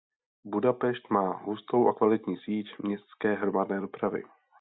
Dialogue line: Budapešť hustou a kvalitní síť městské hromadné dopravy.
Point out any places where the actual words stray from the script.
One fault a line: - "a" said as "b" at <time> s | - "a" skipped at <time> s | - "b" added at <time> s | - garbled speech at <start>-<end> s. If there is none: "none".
- "má" added at 1.1 s